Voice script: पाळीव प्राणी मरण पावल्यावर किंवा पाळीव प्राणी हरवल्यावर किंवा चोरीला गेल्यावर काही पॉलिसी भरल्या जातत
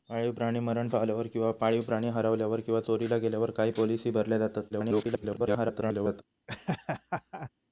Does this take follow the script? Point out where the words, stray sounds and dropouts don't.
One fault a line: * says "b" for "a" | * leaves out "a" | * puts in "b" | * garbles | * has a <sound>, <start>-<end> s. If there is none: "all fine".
* garbles
* has a laugh, 6.5-7.5 s